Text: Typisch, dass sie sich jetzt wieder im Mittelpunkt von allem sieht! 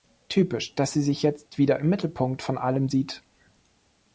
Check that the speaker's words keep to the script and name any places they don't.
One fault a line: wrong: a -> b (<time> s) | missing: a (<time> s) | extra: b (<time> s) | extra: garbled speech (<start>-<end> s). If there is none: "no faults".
no faults